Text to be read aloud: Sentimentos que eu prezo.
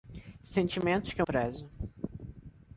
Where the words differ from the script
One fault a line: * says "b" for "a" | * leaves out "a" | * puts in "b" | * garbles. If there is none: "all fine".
all fine